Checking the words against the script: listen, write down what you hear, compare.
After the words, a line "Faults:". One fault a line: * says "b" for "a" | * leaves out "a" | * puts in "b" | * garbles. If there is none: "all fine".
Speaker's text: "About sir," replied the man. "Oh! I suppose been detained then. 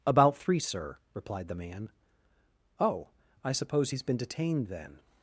"About three, sir," replied the man. "Oh! I suppose he's been detained then.
Faults:
* puts in "three"
* puts in "he's"